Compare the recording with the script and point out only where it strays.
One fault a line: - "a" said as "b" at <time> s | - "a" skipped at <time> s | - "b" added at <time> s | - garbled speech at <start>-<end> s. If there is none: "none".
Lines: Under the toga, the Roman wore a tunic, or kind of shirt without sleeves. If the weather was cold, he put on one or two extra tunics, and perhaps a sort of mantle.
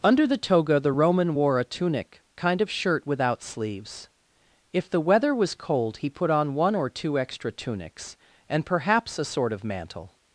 - "or" skipped at 2.2 s